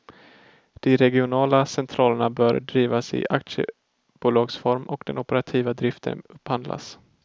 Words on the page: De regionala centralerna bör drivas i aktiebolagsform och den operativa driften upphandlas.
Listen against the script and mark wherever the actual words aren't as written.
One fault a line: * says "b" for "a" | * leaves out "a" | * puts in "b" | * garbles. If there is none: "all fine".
all fine